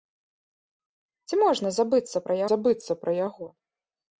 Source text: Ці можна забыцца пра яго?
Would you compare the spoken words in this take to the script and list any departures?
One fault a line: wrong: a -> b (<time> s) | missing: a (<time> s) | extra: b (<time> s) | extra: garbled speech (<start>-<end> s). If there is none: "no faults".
extra: забыцца пра (2.5 s)